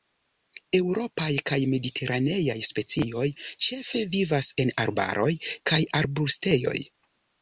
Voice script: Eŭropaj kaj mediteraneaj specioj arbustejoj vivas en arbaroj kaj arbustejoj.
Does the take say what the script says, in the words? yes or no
no